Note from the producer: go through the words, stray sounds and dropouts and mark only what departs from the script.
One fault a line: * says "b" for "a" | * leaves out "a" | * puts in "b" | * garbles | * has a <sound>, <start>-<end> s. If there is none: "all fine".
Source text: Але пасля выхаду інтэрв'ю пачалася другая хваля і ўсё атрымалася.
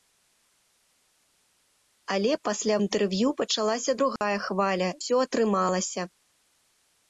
* leaves out "выхаду"
* has a dropout, 4.2-4.2 s
* leaves out "і"